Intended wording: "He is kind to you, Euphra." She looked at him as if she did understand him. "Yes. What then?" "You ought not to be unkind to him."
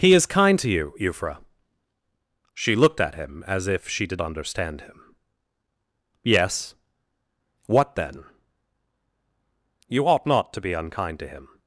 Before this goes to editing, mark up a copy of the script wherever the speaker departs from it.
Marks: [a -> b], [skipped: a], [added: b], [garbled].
"He is kind to you, Euphra." She looked at him as if she did understand him. "Yes. What then?" "You ought not to be unkind to him."